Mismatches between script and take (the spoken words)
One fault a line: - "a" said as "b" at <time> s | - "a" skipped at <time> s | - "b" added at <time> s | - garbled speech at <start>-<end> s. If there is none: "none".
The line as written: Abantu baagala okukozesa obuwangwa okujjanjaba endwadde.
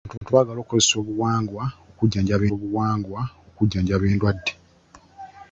- "abantu" added at 0.2 s
- "obuwangwa okujjanjaba" added at 2.5 s